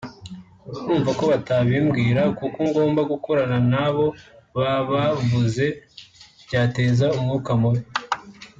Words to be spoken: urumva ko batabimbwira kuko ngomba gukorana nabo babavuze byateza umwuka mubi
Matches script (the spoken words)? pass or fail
pass